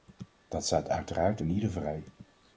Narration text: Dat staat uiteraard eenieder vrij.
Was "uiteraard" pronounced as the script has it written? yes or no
yes